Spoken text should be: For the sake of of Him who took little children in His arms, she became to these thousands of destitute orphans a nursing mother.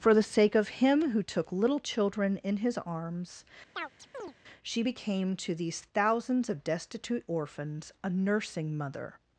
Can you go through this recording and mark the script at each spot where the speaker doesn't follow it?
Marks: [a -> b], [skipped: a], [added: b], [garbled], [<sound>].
For the sake of [skipped: of] Him who took little children in His arms, [chirp] she became to these thousands of destitute orphans a nursing mother.